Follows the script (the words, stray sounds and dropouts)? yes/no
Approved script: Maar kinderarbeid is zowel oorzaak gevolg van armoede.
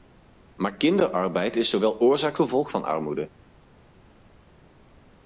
yes